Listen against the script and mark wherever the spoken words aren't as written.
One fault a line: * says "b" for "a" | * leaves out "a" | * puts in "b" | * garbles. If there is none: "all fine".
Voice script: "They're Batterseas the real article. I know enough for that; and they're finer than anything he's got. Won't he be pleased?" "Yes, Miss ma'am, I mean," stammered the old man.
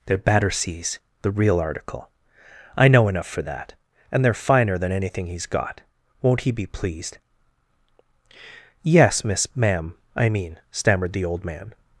all fine